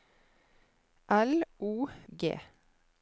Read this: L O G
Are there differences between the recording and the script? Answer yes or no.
no